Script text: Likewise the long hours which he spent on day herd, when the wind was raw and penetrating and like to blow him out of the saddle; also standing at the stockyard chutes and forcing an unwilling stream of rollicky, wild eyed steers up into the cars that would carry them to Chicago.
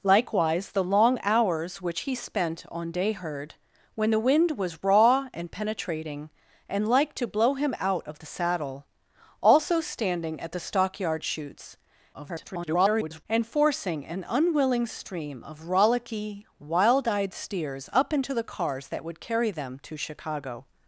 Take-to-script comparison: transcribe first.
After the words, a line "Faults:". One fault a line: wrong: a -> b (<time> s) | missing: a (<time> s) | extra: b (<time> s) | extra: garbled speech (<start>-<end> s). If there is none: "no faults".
Likewise the long hours which he spent on day herd, when the wind was raw and penetrating and like to blow him out of the saddle; also standing at the stockyard chutes [garbled] and forcing an unwilling stream of rollicky, wild eyed steers up into the cars that would carry them to Chicago.
Faults:
extra: garbled speech (12.1-13.3 s)